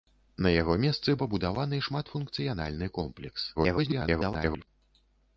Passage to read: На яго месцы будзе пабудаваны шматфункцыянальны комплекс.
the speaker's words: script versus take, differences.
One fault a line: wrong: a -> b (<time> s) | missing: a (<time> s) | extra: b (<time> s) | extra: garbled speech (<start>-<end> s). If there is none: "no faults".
missing: будзе (1.1 s)
extra: garbled speech (3.6-4.7 s)